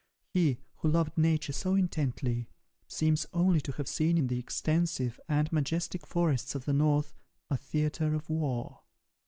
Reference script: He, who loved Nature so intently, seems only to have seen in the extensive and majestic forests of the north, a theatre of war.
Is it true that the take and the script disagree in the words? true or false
false